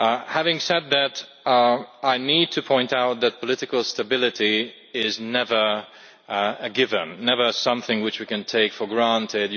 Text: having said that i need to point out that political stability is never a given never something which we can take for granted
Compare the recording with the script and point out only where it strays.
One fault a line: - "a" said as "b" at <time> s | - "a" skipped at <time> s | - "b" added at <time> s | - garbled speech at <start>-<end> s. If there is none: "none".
none